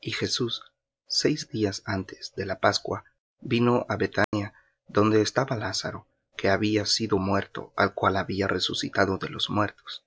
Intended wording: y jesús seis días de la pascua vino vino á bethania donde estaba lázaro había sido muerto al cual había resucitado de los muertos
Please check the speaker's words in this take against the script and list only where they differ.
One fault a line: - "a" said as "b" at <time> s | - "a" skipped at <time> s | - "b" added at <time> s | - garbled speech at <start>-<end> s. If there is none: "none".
- "antes" added at 1.9 s
- "vino" skipped at 3.9 s
- "que" added at 6.4 s